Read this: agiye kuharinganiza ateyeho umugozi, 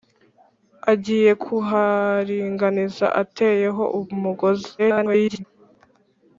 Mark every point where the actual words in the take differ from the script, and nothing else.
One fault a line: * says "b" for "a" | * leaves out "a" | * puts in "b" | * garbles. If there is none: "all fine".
* garbles